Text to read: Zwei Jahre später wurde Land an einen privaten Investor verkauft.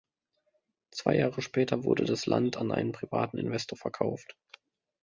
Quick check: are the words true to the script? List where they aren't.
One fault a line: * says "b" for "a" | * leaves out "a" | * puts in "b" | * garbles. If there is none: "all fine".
* puts in "das"